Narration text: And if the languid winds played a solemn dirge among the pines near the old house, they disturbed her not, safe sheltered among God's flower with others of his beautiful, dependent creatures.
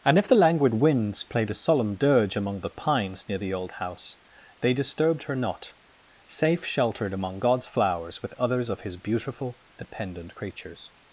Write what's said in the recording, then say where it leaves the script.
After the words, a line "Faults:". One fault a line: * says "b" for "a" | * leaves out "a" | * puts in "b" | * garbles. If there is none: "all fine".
And if the languid winds played a solemn dirge among the pines near the old house, they disturbed her not, safe sheltered among God's flowers with others of his beautiful, dependent creatures.
Faults:
* says "flowers" for "flower"